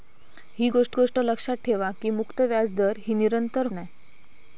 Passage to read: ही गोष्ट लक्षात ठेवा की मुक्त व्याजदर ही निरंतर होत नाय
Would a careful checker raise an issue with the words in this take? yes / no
yes